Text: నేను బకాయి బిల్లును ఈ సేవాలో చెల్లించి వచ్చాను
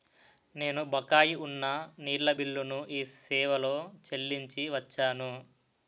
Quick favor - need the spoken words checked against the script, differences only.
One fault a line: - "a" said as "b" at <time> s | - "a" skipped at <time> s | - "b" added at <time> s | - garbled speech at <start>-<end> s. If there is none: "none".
- "ఉన్న నీళ్ళ" added at 1.4 s